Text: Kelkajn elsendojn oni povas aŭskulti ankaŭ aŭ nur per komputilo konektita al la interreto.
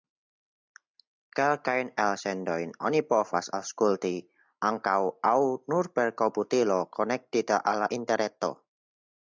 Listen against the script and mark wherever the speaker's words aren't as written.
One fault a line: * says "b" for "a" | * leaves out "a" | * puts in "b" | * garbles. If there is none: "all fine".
all fine